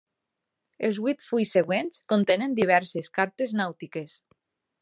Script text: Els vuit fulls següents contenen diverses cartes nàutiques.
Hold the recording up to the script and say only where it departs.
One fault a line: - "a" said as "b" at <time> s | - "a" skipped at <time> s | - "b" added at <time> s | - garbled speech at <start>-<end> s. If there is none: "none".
none